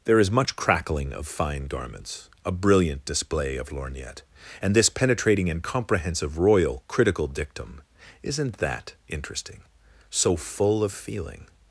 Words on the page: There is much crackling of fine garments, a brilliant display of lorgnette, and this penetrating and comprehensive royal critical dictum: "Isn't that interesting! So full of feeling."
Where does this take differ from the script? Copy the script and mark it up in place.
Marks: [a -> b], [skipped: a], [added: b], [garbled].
There is much crackling of fine garments, a brilliant display of lorgnette, and this penetrating and comprehensive royal critical dictum: "Isn't that interesting! So full of feeling."